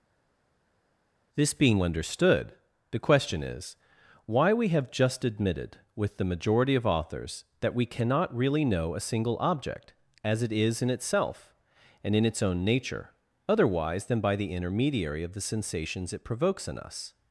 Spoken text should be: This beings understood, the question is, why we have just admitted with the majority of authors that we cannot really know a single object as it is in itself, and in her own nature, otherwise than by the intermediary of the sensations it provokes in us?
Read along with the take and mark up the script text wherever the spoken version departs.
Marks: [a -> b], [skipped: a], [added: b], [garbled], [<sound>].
This [beings -> being] understood, the question is, why we have just admitted with the majority of authors that we cannot really know a single object as it is in itself, and in [her -> its] own nature, otherwise than by the intermediary of the sensations it provokes in us?